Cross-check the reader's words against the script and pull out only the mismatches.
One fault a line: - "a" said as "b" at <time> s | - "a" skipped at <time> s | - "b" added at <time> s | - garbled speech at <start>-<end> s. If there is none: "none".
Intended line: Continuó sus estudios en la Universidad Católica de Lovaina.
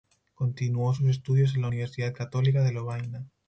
none